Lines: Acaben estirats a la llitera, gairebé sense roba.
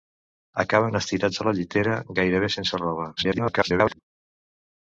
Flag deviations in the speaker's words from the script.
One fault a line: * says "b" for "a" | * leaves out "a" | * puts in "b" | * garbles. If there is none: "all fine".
* garbles